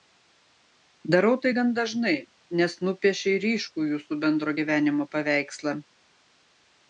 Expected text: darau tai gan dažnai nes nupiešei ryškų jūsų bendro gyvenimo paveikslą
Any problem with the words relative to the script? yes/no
no